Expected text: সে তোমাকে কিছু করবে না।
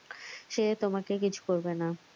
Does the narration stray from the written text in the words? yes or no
no